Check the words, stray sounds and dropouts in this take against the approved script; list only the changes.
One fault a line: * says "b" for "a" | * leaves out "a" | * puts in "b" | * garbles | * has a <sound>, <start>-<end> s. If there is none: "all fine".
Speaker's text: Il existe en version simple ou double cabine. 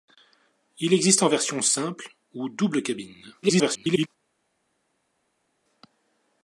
* garbles